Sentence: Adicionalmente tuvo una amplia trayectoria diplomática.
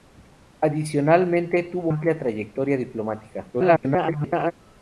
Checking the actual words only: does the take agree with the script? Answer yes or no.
no